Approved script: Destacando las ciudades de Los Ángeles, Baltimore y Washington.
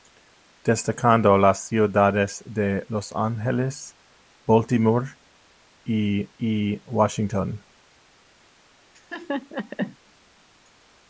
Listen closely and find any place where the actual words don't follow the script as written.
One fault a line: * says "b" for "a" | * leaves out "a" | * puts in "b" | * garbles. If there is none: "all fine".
* puts in "y"